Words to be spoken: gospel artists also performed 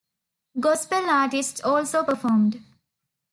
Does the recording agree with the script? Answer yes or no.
yes